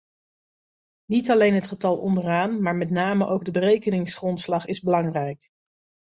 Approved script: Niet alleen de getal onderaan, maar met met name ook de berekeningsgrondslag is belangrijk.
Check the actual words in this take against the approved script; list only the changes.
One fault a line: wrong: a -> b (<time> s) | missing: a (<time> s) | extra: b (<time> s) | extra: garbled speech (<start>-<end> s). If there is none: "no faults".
wrong: de -> het (1.5 s)
missing: met (2.9 s)